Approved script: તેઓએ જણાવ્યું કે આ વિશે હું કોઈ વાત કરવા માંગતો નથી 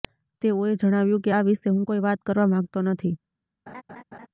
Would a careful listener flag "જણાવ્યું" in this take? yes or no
no